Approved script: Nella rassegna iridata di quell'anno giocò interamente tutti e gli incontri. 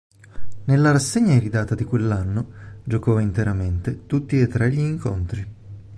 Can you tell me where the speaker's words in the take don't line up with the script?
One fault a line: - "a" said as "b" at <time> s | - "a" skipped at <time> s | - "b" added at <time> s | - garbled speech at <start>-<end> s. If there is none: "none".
- "tre" added at 4.5 s